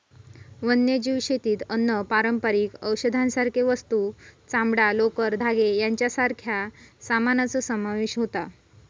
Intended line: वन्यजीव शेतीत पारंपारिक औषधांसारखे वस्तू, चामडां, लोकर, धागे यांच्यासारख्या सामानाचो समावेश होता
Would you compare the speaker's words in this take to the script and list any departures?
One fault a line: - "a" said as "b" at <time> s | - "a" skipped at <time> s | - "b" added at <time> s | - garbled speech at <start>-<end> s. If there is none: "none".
- "अन्न" added at 1.7 s